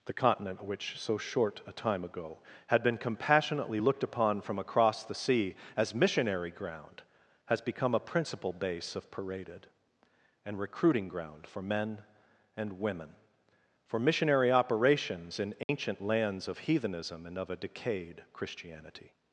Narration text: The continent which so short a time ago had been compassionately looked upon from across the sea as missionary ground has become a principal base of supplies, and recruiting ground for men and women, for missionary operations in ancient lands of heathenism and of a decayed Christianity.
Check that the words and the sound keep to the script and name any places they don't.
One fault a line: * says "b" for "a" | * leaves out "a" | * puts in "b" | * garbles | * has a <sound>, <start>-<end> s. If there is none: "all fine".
* says "paraded" for "supplies"
* has a dropout, 15.6-15.7 s